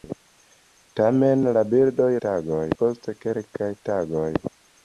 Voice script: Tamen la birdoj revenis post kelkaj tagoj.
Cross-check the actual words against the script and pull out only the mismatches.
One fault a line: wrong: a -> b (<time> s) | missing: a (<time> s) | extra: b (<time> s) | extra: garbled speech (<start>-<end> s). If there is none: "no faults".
wrong: revenis -> tagoj (2.3 s)